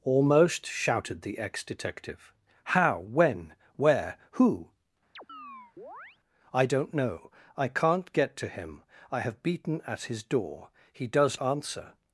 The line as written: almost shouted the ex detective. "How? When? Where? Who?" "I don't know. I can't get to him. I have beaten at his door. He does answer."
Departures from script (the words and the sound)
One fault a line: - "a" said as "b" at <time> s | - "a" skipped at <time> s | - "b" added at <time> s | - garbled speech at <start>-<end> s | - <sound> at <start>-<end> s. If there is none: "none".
- chirp at 5.2-6.2 s